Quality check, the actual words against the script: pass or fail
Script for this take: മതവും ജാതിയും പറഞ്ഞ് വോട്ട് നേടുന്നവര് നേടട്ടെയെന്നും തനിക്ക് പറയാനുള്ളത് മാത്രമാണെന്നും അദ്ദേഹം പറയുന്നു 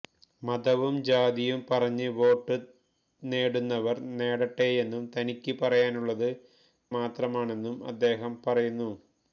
pass